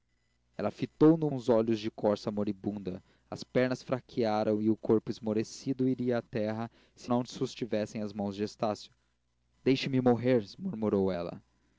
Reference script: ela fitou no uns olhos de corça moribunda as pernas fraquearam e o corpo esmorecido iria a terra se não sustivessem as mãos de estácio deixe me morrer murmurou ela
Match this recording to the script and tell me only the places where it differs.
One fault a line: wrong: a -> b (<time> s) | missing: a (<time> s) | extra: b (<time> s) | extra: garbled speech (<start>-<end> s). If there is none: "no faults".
no faults